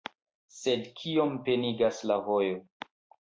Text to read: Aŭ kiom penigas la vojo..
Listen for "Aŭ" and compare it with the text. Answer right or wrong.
wrong